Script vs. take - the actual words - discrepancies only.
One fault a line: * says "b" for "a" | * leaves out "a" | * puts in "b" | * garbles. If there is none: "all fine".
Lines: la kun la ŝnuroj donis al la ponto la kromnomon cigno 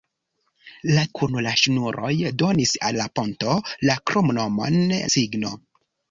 all fine